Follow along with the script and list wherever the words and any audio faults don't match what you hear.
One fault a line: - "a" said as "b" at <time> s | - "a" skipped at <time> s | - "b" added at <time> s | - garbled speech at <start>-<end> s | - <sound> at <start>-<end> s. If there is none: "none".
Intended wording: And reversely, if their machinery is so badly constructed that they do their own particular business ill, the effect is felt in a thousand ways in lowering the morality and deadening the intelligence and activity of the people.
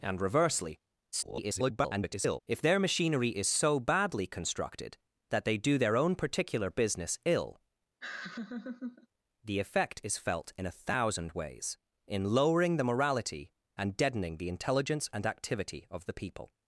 - garbled speech at 1.1-2.4 s
- laugh at 8.0-9.1 s